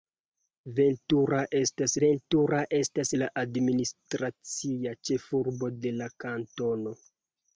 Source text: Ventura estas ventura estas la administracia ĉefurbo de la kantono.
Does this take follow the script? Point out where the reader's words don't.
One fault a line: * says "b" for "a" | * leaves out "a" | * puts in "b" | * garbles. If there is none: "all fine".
all fine